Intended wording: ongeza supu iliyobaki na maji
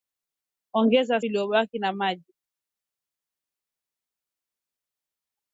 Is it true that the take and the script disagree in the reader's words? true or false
true